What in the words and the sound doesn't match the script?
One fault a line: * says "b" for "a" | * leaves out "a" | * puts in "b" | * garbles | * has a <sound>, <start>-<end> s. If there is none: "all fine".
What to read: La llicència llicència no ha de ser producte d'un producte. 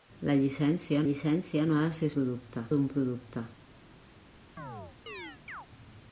* has a chirp, 4.6-5.7 s